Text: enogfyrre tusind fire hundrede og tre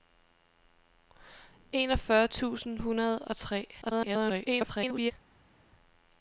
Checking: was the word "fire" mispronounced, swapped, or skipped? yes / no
yes